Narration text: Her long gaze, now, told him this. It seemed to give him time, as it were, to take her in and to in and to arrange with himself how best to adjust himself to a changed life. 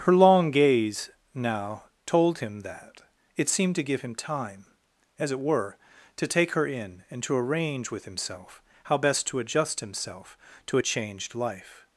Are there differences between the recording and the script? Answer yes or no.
yes